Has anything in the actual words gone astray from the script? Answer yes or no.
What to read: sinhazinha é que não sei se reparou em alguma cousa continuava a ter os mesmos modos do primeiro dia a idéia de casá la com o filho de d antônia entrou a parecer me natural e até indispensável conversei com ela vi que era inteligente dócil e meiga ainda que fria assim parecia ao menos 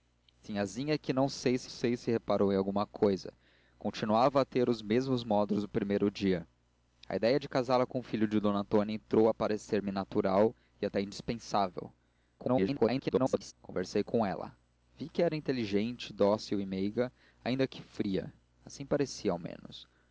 yes